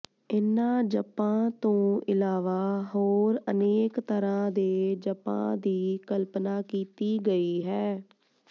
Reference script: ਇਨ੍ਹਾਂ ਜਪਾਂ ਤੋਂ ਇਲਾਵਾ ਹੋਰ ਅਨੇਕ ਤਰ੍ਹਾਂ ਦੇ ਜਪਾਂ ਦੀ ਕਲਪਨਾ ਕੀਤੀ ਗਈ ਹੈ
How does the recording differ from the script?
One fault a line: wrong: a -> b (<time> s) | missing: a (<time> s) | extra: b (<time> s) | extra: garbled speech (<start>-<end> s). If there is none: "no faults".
no faults